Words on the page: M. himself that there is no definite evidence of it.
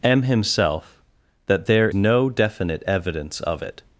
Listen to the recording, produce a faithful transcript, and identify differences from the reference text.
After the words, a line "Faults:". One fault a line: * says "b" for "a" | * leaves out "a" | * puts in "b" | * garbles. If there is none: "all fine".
M. himself that there no definite evidence of it.
Faults:
* leaves out "is"